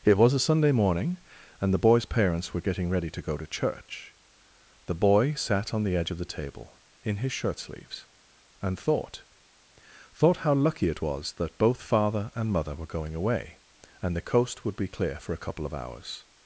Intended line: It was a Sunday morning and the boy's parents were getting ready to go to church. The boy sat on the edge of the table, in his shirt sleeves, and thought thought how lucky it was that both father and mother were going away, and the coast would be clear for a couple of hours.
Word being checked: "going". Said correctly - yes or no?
yes